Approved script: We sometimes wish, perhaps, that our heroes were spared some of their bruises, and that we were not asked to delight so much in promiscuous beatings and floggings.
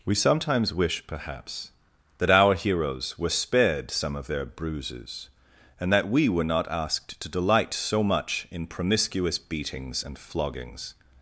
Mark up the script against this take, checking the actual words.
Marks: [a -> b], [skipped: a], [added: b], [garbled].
We sometimes wish, perhaps, that our heroes were spared some of their bruises, and that we were not asked to delight so much in promiscuous beatings and floggings.